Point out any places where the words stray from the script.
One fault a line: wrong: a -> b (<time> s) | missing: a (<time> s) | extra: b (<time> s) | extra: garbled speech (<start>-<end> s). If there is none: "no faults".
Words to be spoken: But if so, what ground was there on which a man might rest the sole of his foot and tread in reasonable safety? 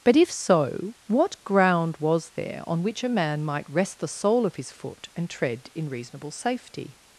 no faults